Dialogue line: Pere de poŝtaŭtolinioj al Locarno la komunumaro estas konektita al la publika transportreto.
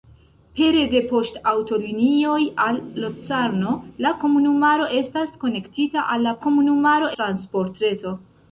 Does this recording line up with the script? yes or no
no